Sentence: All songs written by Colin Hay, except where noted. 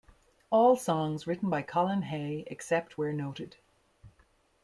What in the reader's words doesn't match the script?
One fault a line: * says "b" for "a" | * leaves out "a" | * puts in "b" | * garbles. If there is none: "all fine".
all fine